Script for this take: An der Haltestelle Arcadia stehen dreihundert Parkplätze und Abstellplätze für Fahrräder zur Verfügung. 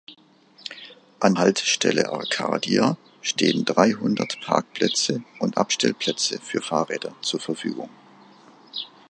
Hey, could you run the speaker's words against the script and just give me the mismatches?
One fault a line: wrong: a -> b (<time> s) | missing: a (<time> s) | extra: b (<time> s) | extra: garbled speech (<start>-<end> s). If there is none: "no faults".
missing: der (1.4 s)